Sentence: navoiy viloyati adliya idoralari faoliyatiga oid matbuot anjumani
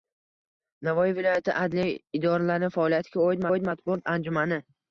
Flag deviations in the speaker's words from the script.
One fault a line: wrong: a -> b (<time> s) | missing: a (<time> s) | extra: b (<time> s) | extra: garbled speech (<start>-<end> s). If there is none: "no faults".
extra: oid (3.5 s)